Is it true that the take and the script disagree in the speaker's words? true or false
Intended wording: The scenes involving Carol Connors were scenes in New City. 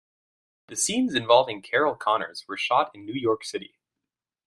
true